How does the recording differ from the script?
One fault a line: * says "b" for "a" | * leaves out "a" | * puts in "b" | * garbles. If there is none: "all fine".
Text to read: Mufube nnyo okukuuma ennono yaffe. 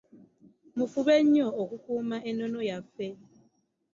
all fine